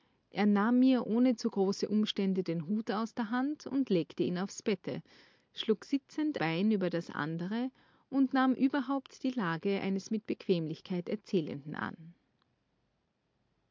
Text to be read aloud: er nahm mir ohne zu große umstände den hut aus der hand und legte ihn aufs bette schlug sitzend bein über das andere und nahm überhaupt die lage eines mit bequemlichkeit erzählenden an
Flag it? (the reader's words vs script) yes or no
no